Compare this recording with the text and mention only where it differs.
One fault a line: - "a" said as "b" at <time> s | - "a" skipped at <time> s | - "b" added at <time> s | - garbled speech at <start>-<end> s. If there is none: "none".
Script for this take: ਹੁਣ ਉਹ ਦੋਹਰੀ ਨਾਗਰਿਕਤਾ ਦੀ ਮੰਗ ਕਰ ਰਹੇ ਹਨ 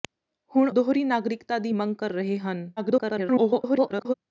- "ਉਹ" skipped at 0.7 s
- garbled speech at 2.8-4.1 s